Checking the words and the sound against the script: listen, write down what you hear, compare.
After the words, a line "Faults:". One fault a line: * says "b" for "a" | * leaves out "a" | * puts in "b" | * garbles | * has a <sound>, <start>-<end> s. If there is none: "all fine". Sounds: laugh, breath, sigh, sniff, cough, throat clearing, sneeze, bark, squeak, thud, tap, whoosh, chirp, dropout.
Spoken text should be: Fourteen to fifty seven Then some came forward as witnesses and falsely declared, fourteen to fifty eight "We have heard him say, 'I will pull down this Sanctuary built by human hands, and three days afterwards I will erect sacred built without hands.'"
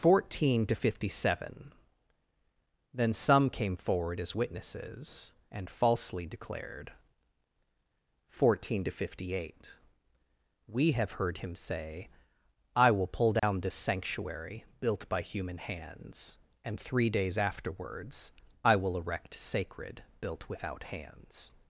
Fourteen to fifty seven Then some came forward as witnesses and falsely declared, fourteen to fifty eight "We have heard him say, 'I will pull down this Sanctuary built by human hands, and three days afterwards I will erect sacred built without hands.'"
Faults:
* has a dropout, 13.4-13.4 s